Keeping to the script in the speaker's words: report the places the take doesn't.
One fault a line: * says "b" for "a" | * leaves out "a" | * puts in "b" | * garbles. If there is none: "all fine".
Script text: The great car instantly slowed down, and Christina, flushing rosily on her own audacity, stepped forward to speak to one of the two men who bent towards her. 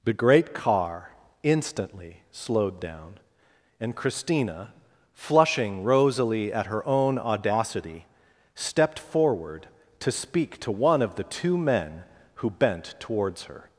* says "at" for "on"